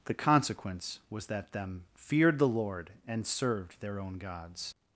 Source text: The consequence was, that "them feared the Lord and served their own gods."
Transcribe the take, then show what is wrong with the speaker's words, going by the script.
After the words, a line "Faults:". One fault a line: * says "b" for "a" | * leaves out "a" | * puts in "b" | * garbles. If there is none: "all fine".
The consequence was, that "them feared the Lord and served their own gods."
Faults:
all fine